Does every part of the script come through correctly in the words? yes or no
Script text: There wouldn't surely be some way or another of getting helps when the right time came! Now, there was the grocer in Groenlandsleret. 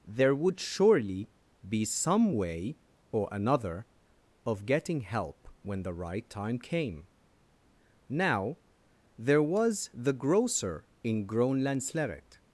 no